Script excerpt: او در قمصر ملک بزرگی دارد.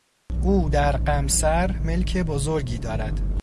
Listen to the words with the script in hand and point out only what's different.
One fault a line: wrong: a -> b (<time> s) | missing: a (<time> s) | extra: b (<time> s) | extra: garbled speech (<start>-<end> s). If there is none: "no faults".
no faults